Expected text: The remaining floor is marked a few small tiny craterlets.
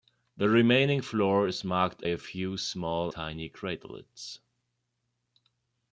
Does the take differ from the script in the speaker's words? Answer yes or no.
no